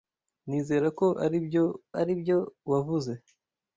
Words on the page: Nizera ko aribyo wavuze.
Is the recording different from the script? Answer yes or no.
yes